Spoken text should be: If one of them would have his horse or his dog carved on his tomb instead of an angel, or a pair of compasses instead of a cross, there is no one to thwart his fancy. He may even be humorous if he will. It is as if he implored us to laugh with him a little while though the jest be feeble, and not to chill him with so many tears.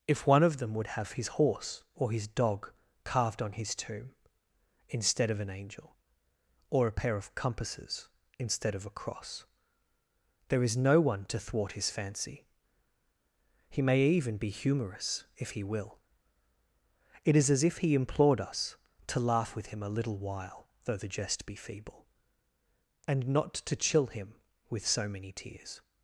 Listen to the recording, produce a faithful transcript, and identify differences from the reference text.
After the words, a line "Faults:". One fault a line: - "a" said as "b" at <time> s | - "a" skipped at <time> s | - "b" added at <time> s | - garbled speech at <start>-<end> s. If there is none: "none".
If one of them would have his horse or his dog carved on his tomb instead of an angel, or a pair of compasses instead of a cross, there is no one to thwart his fancy. He may even be humorous if he will. It is as if he implored us to laugh with him a little while though the jest be feeble, and not to chill him with so many tears.
Faults:
none